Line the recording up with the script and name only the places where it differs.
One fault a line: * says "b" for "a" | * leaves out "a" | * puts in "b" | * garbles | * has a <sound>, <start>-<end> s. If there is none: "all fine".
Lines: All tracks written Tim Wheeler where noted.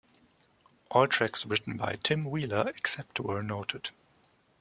* puts in "by"
* puts in "except"